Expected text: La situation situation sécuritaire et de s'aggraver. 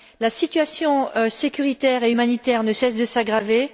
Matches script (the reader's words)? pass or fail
fail